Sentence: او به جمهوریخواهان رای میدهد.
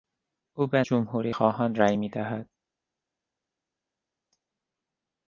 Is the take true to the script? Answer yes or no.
yes